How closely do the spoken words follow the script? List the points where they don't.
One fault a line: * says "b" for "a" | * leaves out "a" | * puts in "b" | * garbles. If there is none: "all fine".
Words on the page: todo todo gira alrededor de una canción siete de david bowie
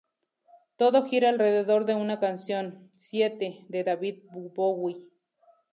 * leaves out "todo"